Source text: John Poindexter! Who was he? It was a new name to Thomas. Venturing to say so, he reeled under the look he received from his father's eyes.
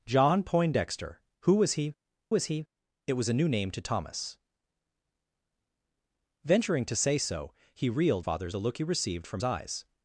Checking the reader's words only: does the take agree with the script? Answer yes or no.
no